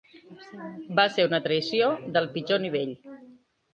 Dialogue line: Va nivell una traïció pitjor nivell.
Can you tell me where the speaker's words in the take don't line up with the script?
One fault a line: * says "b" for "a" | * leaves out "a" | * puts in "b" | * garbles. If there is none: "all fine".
* says "ser" for "nivell"
* puts in "del"